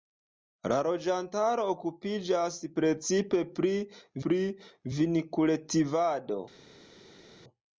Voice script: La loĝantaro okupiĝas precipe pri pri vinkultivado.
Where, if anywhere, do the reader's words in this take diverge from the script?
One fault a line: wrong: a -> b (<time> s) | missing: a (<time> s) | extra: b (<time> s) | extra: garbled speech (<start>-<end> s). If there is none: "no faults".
no faults